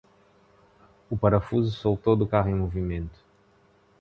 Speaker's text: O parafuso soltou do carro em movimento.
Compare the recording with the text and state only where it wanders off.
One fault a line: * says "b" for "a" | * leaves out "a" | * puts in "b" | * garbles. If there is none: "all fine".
all fine